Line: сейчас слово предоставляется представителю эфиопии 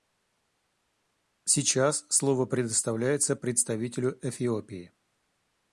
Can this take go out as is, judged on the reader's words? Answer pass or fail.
pass